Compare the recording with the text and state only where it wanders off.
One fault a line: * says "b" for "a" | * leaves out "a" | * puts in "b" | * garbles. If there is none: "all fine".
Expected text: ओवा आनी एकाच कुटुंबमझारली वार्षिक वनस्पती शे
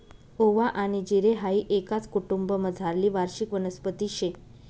* puts in "जिरे हाई"